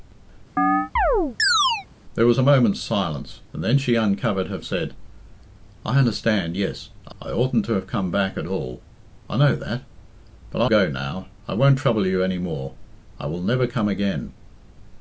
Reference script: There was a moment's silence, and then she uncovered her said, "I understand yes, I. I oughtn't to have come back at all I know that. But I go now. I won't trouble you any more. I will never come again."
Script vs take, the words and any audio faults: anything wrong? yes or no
yes